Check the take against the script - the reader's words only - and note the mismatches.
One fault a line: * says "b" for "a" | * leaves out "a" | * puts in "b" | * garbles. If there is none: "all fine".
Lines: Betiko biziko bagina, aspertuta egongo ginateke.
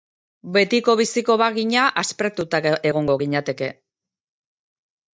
all fine